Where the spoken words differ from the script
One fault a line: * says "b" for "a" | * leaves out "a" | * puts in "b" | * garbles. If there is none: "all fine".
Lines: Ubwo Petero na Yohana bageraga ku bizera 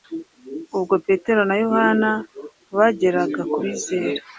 all fine